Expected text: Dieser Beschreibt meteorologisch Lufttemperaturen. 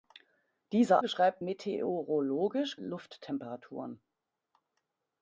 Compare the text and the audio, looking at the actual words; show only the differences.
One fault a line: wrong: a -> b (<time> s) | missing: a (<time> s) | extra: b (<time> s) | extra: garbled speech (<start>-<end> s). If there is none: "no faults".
no faults